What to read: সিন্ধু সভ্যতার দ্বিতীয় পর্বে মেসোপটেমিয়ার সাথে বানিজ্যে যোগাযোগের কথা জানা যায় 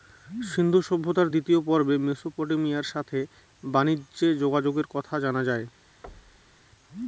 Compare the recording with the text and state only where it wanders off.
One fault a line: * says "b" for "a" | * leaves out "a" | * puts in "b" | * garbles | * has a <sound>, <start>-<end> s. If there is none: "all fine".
* has a thud, 6.0-6.6 s